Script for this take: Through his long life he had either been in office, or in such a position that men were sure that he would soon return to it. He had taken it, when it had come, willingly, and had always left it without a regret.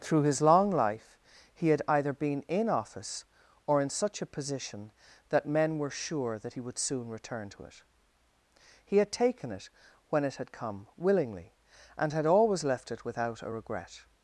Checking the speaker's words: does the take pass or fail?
pass